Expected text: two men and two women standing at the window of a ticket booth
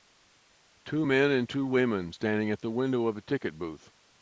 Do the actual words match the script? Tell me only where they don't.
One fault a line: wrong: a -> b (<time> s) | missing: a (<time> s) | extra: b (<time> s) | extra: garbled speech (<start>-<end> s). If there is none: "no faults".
no faults